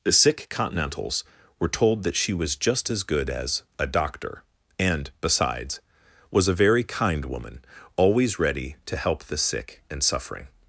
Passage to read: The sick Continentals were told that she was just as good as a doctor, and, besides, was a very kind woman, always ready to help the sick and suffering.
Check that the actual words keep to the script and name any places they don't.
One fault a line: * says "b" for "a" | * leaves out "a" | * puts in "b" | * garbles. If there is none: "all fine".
all fine